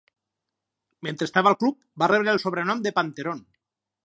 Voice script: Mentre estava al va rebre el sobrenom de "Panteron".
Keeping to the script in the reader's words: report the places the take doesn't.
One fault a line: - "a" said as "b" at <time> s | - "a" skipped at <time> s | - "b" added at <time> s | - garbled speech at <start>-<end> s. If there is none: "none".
- "club" added at 1.6 s